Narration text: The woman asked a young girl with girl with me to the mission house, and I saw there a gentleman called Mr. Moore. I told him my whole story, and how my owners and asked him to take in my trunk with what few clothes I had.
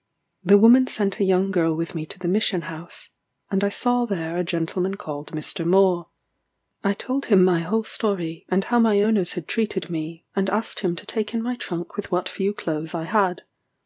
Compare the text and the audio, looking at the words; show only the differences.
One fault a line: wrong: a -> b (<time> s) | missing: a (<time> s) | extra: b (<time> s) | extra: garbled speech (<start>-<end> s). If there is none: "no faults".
wrong: asked -> sent (0.9 s)
missing: girl with (1.9 s)
extra: had treated me (9.3 s)